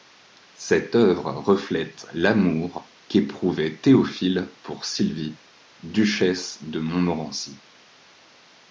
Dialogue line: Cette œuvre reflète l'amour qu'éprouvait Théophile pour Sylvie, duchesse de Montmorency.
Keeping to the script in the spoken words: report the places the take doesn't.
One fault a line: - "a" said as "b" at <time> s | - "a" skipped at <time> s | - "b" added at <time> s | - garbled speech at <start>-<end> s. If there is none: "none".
none